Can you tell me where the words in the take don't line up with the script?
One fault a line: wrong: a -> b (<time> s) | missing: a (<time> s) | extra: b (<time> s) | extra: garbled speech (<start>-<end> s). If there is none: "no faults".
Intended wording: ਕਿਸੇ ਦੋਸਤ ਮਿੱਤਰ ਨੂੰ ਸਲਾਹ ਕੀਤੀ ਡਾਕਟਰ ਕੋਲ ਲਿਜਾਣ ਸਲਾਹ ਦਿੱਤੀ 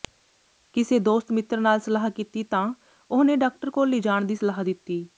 wrong: ਨੂੰ -> ਨਾਲ (1.6 s)
extra: ਤਾਂ ਉਹਨੇ (2.4 s)
extra: ਦੀ (4.2 s)